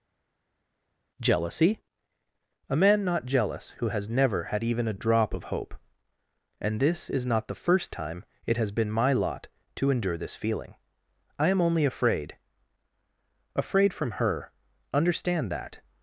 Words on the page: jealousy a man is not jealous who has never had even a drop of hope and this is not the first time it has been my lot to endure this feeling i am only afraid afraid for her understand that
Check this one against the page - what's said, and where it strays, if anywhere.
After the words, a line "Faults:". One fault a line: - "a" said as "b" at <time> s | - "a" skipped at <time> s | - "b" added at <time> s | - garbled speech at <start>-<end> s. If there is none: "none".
jealousy a man not jealous who has never had even a drop of hope and this is not the first time it has been my lot to endure this feeling i am only afraid afraid from her understand that
Faults:
- "is" skipped at 3.0 s
- "for" said as "from" at 13.9 s